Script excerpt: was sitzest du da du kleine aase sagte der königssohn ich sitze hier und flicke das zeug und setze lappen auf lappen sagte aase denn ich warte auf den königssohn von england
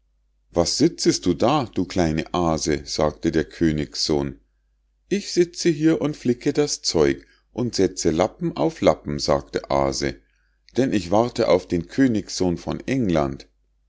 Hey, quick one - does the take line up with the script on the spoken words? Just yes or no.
yes